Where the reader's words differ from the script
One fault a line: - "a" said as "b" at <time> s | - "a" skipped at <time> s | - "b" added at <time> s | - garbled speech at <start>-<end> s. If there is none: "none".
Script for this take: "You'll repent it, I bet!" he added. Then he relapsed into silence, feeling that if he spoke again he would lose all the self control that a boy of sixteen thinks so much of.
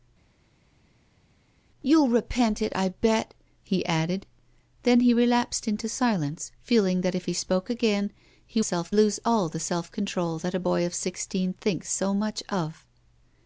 - "would" said as "self" at 8.6 s